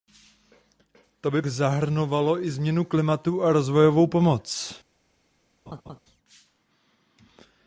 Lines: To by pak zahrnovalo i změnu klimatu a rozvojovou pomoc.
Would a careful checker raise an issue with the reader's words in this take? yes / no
yes